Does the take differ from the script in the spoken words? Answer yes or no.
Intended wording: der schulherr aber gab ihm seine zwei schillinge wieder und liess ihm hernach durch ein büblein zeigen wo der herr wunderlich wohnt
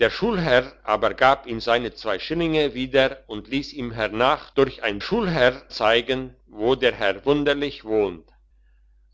yes